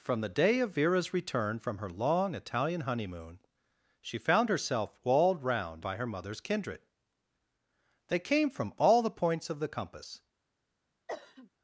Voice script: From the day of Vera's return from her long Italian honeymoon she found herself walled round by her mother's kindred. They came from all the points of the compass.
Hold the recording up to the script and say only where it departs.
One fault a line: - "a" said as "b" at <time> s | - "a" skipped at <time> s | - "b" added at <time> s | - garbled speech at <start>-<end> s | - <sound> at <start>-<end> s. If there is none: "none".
- cough at 11.1-11.5 s